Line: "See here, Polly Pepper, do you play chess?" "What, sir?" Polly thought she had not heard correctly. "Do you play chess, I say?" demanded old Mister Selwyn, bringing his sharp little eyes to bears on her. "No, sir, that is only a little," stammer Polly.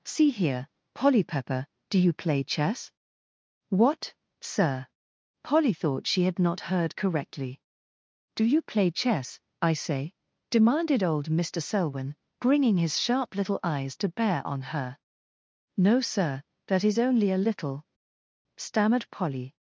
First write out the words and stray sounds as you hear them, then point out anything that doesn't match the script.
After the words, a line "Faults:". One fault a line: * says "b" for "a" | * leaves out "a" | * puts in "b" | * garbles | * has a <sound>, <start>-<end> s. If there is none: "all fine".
"See here, Polly Pepper, do you play chess?" "What, sir?" Polly thought she had not heard correctly. "Do you play chess, I say?" demanded old Mister Selwyn, bringing his sharp little eyes to bear on her. "No, sir, that is only a little," stammered Polly.
Faults:
* says "bear" for "bears"
* says "stammered" for "stammer"